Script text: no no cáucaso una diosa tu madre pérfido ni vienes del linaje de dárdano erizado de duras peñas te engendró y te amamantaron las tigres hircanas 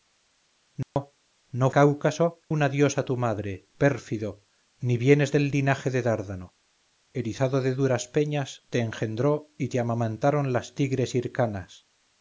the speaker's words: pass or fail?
pass